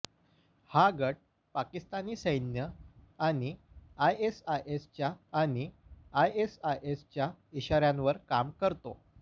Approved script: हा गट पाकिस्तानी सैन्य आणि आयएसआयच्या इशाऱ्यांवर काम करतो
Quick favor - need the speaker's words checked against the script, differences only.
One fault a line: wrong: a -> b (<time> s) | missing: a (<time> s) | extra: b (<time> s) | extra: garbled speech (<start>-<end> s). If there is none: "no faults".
extra: आणि आयएसआयच्या (5.3 s)